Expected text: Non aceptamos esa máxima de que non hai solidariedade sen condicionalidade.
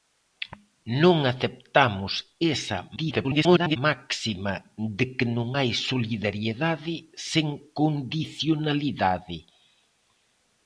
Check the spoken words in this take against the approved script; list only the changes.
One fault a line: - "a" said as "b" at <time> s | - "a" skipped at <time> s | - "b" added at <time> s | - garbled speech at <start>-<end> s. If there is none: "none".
- garbled speech at 3.0-3.8 s